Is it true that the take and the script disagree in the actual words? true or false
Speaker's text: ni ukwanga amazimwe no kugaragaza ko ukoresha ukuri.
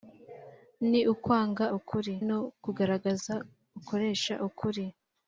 true